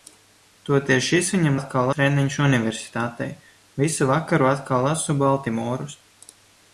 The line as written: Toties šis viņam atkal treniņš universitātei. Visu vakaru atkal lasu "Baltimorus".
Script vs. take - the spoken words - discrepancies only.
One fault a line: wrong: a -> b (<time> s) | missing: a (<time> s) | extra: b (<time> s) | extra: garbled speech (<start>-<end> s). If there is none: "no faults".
no faults